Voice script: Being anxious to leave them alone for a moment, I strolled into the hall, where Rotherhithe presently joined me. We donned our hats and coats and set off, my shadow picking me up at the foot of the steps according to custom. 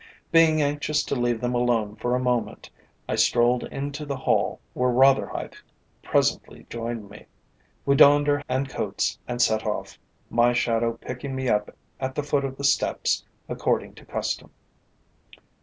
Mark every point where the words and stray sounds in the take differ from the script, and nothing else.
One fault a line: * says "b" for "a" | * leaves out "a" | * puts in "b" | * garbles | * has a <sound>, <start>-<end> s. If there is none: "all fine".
* leaves out "hats"